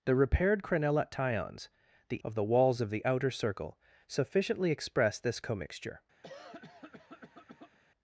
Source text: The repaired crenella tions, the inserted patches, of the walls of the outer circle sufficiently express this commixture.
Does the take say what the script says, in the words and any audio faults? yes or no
no